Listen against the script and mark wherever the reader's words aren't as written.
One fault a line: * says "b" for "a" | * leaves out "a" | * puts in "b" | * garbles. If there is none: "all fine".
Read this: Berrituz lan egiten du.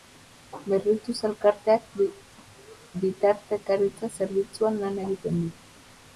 * puts in "elkarteak bitartekaritza zerbitzuan"